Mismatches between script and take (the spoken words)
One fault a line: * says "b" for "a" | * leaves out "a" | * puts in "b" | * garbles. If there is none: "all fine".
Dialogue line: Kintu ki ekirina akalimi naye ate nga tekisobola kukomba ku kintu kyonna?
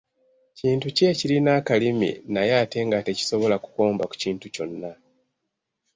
all fine